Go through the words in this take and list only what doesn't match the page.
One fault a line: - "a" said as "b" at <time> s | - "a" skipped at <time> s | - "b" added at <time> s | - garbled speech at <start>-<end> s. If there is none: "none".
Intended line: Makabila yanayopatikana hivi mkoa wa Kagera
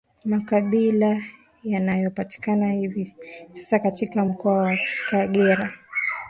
- "sasa katika" added at 3.5 s